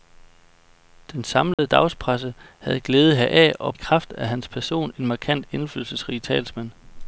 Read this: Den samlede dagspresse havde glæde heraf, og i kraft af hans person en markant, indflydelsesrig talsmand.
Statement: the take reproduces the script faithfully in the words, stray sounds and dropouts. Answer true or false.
false